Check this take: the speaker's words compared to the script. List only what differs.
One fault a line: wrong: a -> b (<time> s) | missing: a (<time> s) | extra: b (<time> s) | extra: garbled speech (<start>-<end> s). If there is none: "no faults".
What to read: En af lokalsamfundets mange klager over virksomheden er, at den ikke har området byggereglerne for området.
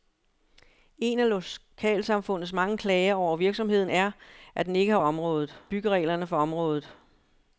no faults